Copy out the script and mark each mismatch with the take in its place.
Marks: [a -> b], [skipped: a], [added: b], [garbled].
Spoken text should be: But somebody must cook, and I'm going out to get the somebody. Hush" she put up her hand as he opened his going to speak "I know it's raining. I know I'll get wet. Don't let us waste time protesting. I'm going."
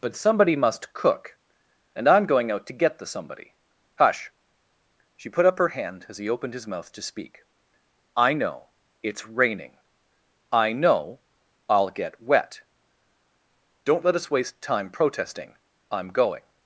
But somebody must cook, and I'm going out to get the somebody. Hush" she put up her hand as he opened his [going -> mouth] to speak "I know it's raining. I know I'll get wet. Don't let us waste time protesting. I'm going."